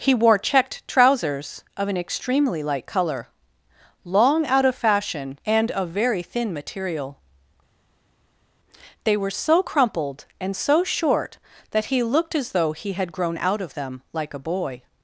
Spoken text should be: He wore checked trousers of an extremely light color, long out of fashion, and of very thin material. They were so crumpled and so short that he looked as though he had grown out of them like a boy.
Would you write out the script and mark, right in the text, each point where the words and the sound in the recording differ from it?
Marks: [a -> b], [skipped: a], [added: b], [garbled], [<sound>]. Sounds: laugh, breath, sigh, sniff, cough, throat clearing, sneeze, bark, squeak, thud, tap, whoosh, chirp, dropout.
He wore checked trousers of an extremely light color, long out of fashion, and of very thin material. They were so crumpled and so short that he looked as though he had grown out of them like a boy.